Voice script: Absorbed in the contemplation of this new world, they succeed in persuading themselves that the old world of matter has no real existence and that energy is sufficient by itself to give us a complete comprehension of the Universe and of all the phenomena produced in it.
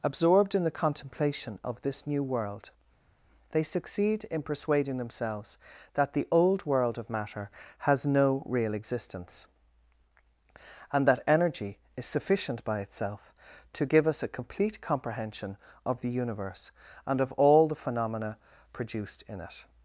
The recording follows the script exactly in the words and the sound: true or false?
true